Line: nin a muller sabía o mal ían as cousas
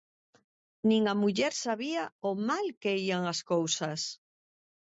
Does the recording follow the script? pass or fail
fail